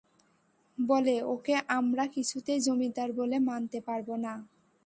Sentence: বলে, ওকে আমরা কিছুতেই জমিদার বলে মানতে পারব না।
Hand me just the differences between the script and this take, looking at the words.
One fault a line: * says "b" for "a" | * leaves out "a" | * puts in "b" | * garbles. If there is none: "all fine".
all fine